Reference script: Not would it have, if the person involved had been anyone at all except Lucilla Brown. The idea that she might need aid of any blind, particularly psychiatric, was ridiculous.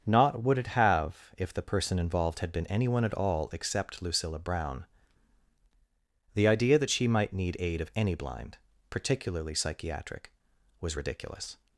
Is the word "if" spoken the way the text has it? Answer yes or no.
yes